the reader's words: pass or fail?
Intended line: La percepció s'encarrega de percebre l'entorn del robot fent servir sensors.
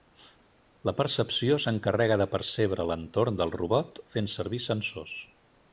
pass